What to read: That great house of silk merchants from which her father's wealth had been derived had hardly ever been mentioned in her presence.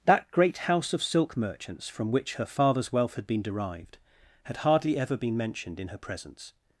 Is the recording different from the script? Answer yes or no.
no